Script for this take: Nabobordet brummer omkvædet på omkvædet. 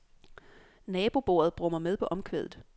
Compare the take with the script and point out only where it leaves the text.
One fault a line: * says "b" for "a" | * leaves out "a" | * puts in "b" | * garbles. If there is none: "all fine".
* says "med" for "omkvædet"